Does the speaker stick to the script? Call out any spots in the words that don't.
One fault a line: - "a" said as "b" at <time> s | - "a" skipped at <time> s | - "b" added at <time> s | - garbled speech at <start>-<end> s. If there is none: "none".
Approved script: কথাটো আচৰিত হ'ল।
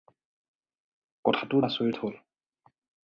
none